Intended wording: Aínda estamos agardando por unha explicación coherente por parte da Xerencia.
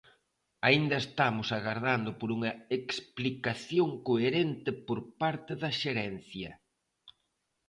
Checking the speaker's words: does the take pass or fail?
pass